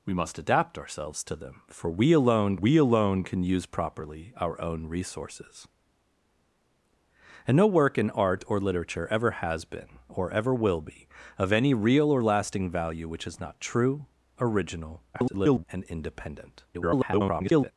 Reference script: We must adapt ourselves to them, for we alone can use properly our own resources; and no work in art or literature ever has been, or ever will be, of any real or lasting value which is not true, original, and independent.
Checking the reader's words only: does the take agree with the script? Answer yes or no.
no